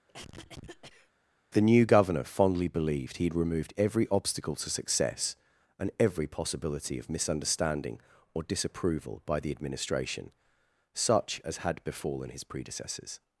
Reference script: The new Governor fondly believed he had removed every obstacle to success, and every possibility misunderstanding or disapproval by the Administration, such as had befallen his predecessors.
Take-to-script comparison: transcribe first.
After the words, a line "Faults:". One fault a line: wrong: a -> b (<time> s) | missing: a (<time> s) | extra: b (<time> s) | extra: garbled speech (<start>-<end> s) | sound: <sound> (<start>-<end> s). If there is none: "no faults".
The new Governor fondly believed he had removed every obstacle to success, and every possibility of misunderstanding or disapproval by the Administration, such as had befallen his predecessors.
Faults:
sound: cough (0.1-1.1 s)
extra: of (7.0 s)